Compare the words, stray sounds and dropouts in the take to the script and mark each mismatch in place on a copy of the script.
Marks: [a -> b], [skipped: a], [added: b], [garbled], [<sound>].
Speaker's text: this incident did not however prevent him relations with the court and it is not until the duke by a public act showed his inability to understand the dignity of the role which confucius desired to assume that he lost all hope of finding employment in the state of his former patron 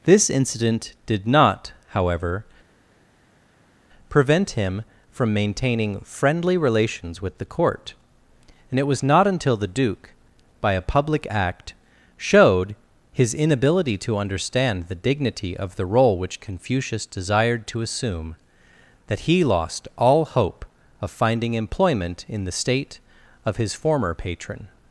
this incident did not however prevent him [added: from maintaining friendly] relations with the court and it [is -> was] not until the duke by a public act showed his inability to understand the dignity of the role which confucius desired to assume that he lost all hope of finding employment in the state of his former patron